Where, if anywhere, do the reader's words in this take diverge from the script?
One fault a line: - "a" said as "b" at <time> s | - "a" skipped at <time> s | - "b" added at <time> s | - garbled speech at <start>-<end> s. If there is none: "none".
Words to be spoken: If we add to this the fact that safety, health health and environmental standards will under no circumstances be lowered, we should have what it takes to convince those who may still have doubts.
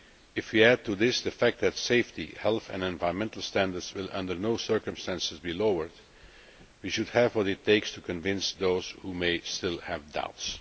- "health" skipped at 2.7 s